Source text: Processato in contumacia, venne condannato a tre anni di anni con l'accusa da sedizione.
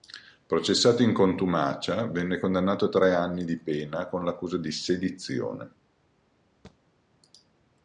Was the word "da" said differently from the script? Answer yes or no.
yes